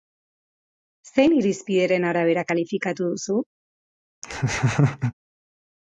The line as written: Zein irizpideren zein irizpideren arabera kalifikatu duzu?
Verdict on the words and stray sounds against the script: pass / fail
fail